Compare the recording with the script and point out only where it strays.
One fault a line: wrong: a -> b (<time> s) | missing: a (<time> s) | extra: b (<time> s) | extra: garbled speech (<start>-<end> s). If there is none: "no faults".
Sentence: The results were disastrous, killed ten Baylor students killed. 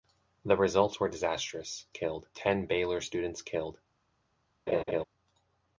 no faults